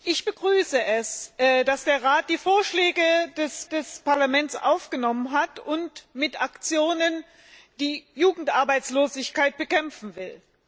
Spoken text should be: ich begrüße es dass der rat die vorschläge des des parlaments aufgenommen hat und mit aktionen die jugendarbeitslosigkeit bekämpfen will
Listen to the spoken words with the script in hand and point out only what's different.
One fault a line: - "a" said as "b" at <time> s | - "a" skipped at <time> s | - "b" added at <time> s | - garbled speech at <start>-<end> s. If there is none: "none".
none